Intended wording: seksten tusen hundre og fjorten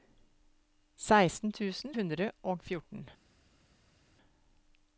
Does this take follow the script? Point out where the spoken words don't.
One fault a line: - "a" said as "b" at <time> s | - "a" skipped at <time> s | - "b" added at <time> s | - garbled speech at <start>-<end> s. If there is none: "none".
none